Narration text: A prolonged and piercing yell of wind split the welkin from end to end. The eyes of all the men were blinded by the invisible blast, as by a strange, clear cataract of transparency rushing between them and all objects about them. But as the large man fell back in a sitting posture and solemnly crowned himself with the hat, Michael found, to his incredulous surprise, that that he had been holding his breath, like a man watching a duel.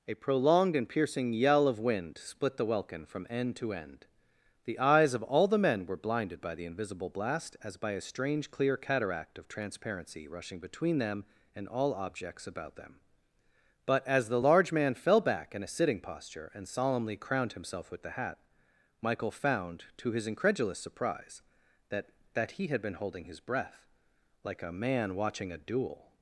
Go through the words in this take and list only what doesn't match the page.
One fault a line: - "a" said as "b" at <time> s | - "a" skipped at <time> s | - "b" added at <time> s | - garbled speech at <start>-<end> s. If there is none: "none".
none